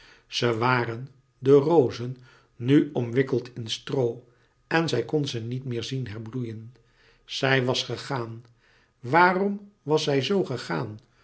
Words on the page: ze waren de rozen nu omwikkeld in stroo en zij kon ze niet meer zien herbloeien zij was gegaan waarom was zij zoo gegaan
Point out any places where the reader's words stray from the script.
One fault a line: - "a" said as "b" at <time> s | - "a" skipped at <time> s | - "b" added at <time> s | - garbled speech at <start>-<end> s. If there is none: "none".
none